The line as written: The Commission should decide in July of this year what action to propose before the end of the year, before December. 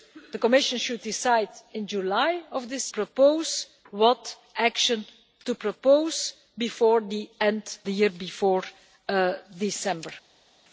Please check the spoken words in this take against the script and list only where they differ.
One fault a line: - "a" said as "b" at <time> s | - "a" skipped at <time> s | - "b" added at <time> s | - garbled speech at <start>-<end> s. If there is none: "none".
- "year" said as "propose" at 2.9 s
- "of" skipped at 7.8 s